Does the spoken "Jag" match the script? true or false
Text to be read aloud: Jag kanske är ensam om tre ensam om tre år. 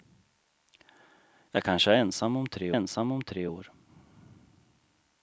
true